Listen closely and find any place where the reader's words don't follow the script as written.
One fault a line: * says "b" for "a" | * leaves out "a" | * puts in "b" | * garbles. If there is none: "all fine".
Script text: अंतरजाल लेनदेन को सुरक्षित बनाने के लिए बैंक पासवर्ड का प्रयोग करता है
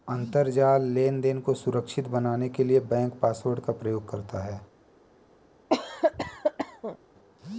all fine